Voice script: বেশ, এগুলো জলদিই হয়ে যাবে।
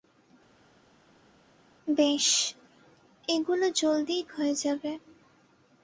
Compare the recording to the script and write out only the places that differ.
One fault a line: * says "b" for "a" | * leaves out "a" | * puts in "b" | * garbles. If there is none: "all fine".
all fine